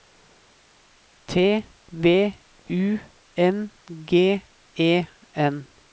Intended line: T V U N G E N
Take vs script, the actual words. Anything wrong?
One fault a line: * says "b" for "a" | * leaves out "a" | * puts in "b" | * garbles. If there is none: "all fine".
all fine